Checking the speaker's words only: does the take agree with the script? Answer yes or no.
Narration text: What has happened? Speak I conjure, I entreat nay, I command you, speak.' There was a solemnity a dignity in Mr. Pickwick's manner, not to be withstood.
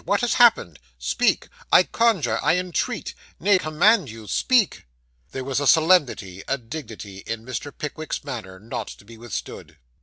no